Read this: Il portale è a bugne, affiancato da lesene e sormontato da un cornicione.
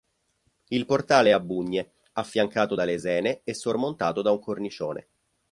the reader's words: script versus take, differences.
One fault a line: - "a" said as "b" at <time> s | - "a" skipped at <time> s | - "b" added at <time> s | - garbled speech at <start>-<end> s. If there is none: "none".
none